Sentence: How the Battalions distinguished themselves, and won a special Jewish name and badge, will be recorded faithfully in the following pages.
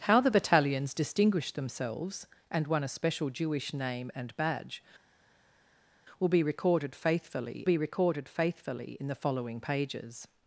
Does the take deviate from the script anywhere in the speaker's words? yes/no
yes